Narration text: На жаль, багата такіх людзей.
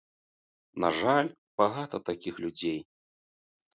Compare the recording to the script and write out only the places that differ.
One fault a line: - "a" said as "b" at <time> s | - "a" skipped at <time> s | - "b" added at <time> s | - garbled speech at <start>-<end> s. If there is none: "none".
none